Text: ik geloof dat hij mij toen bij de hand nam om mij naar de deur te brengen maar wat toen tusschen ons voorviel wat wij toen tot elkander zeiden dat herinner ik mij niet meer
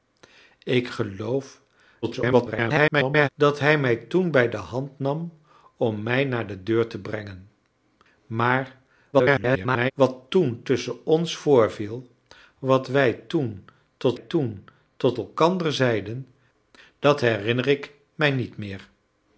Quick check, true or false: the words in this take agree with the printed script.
false